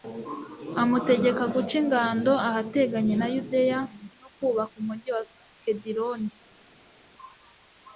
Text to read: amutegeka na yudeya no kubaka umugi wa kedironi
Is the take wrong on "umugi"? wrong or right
right